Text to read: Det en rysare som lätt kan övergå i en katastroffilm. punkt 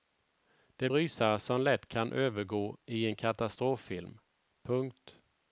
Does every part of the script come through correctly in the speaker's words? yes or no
yes